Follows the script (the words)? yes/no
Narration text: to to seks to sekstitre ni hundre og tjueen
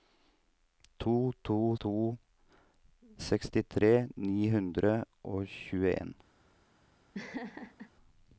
no